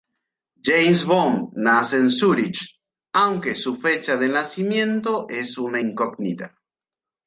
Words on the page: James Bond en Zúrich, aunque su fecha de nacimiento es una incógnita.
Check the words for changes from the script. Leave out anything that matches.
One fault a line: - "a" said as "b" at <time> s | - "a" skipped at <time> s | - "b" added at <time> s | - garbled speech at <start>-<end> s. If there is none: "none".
- "nace" added at 1.5 s